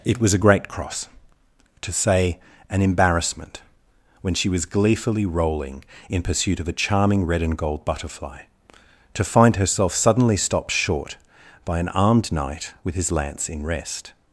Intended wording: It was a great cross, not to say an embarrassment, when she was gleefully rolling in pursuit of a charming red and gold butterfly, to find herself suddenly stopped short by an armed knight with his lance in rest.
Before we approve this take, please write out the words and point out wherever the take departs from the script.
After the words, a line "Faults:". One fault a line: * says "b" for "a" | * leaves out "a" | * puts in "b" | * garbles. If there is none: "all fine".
It was a great cross, to say an embarrassment, when she was gleefully rolling in pursuit of a charming red and gold butterfly, to find herself suddenly stopped short by an armed knight with his lance in rest.
Faults:
* leaves out "not"